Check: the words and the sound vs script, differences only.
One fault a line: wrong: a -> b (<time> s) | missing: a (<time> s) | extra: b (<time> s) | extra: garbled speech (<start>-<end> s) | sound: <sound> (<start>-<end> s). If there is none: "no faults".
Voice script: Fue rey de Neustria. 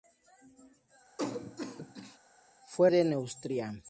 sound: cough (1.2-2.2 s)
missing: rey (2.9 s)